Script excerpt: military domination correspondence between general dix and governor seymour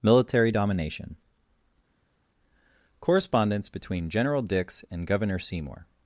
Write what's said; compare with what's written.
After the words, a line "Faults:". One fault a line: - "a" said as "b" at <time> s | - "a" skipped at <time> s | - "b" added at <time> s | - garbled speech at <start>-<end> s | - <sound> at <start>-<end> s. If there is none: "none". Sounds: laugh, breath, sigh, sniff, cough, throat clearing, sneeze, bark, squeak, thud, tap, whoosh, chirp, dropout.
military domination correspondence between general dix and governor seymour
Faults:
none